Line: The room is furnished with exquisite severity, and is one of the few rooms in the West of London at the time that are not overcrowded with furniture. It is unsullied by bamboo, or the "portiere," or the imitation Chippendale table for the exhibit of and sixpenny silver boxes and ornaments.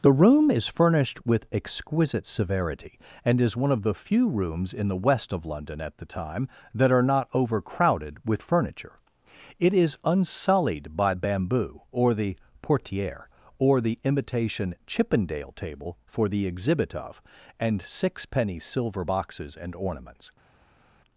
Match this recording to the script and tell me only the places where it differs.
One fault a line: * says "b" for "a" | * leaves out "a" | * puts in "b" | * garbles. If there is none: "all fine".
all fine